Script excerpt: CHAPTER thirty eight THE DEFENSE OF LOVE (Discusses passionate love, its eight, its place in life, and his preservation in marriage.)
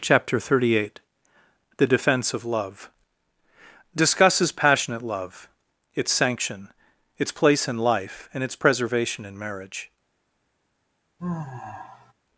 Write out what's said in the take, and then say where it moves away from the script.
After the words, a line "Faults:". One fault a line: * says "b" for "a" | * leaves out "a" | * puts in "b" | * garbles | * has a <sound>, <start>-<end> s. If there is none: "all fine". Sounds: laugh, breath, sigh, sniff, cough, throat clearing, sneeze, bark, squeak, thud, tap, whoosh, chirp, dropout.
CHAPTER thirty eight THE DEFENSE OF LOVE (Discusses passionate love, its sanction, its place in life, and its preservation in marriage.)
Faults:
* says "sanction" for "eight"
* says "its" for "his"
* has a sigh, 11.2-12.1 s